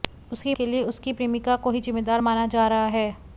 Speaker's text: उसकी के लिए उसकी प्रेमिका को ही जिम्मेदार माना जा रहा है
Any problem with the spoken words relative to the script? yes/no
no